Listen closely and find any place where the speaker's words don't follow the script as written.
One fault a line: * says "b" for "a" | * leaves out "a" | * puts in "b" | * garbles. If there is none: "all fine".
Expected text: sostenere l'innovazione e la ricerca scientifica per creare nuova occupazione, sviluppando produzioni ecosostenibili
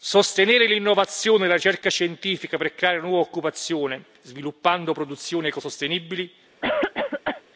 all fine